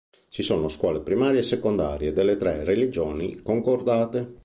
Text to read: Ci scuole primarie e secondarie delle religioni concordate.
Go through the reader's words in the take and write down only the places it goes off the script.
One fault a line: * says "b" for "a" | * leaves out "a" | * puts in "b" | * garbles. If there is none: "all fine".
* puts in "sono"
* puts in "tre"